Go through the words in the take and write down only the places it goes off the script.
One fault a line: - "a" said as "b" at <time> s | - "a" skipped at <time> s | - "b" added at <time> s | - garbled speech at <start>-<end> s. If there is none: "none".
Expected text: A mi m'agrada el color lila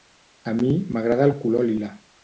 none